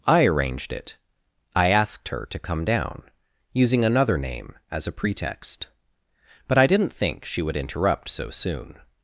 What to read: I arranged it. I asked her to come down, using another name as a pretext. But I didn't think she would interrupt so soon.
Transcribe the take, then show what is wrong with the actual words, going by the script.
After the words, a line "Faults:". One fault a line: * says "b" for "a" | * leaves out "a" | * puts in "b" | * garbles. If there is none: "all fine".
I arranged it. I asked her to come down, using another name as a pretext. But I didn't think she would interrupt so soon.
Faults:
all fine